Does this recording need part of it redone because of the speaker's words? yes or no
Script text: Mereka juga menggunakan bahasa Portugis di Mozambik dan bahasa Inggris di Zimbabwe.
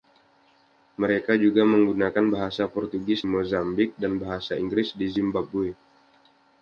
yes